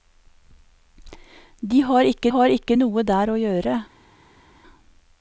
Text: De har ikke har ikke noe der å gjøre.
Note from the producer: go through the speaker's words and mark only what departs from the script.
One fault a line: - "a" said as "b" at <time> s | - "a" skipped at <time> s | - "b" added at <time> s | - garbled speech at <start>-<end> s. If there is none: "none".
none